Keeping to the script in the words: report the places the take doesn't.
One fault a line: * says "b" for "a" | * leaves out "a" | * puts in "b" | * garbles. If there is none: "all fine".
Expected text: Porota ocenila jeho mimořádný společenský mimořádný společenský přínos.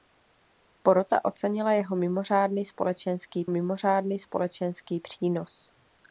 all fine